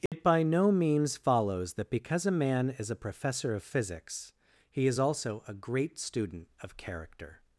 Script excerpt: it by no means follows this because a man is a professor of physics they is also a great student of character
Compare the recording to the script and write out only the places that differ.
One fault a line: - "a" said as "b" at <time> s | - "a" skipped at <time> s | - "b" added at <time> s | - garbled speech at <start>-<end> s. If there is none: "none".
- "this" said as "that" at 1.7 s
- "they" said as "he" at 4.7 s